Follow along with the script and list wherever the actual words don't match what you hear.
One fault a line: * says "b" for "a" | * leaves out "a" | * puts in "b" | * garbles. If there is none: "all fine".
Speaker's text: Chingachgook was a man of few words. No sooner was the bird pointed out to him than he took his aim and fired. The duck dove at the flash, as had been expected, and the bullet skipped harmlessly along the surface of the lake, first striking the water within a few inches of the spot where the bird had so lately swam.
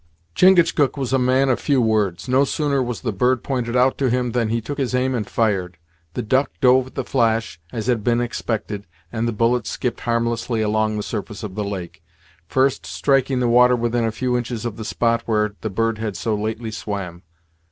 all fine